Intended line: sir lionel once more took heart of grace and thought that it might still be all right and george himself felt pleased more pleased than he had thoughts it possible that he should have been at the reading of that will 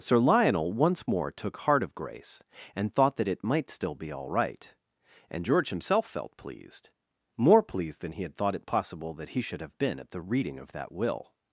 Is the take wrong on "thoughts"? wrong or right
wrong